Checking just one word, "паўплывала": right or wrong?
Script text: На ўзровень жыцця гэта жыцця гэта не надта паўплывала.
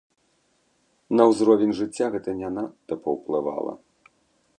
right